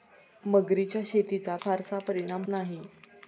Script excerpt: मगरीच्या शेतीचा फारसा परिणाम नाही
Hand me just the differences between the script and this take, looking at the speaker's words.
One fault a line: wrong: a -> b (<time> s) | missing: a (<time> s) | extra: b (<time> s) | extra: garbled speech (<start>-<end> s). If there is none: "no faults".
no faults